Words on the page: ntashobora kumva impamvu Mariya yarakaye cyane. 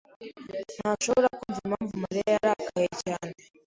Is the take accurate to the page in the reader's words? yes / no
yes